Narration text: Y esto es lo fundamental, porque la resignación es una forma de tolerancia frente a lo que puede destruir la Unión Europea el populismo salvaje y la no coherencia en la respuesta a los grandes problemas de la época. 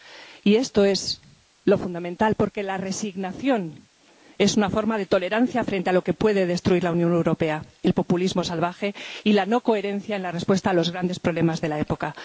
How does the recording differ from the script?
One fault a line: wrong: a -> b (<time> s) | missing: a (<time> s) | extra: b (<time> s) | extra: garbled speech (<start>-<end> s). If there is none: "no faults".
no faults